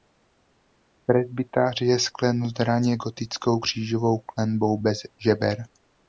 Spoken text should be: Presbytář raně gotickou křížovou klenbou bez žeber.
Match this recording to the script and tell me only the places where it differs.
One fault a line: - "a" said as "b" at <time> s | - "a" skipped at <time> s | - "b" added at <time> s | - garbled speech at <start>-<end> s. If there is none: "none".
- "je sklenut" added at 1.8 s